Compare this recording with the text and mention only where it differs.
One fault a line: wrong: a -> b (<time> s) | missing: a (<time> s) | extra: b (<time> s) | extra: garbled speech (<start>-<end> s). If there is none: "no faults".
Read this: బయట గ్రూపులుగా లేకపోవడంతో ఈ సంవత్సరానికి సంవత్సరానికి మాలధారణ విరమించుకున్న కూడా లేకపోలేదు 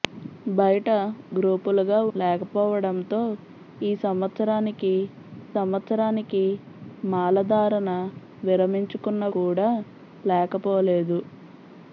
no faults